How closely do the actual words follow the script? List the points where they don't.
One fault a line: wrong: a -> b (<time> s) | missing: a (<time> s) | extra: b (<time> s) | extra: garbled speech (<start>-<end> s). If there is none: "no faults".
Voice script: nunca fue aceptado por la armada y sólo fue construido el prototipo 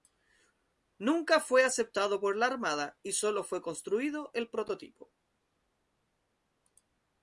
no faults